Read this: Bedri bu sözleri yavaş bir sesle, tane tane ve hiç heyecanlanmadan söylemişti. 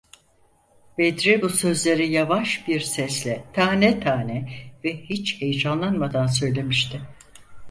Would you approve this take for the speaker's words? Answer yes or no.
yes